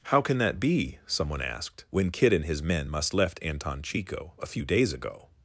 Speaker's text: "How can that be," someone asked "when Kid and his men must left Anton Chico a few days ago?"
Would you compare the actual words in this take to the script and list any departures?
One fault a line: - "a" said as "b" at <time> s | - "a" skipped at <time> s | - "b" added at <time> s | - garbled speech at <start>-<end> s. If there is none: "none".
none